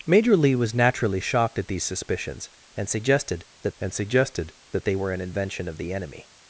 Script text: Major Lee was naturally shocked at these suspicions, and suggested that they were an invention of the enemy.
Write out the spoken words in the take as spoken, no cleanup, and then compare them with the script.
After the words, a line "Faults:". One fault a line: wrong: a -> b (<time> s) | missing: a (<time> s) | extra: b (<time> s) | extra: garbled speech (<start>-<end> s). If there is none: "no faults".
Major Lee was naturally shocked at these suspicions, and suggested that and suggested that they were an invention of the enemy.
Faults:
extra: and suggested that (3.8 s)